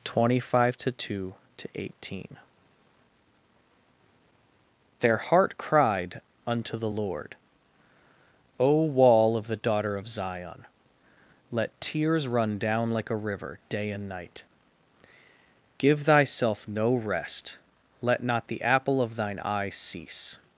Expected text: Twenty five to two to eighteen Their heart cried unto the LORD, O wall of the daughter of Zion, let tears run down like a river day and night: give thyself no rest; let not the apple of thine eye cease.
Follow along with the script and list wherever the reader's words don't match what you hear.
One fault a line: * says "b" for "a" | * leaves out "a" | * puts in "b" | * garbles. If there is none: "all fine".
all fine